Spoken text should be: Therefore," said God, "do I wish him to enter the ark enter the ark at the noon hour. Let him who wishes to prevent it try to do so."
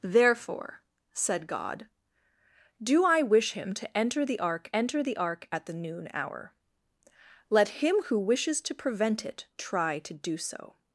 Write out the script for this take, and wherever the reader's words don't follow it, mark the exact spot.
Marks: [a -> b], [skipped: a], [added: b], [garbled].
Therefore," said God, "do I wish him to enter the ark enter the ark at the noon hour. Let him who wishes to prevent it try to do so."